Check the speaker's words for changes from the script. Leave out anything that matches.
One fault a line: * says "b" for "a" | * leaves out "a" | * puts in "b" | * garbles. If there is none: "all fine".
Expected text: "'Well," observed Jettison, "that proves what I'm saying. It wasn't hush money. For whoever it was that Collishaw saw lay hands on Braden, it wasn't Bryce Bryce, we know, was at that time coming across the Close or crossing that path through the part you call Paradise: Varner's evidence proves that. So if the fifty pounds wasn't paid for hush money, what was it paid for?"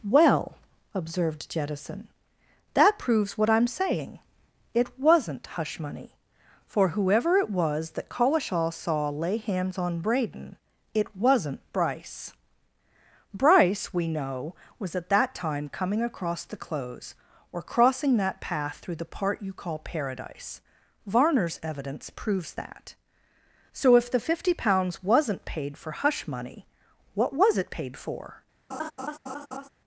all fine